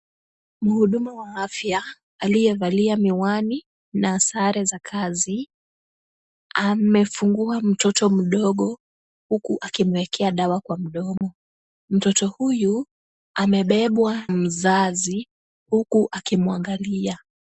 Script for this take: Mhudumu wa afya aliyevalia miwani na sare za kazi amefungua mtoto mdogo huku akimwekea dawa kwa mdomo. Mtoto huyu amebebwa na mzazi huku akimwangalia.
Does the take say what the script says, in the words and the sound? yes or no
no